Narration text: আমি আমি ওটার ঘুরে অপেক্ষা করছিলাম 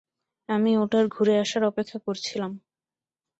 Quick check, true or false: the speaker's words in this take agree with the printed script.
false